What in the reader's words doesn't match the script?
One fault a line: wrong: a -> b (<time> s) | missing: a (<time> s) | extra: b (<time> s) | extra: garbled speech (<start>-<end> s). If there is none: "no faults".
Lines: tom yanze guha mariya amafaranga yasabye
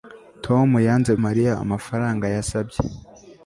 missing: guha (1.1 s)